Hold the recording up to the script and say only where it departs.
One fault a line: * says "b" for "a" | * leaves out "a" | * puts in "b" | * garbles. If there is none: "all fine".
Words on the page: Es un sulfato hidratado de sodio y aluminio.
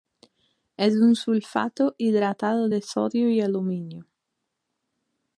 all fine